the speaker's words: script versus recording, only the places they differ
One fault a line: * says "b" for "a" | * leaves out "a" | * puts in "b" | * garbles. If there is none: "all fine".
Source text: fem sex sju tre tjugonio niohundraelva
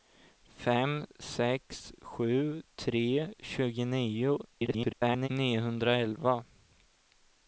* garbles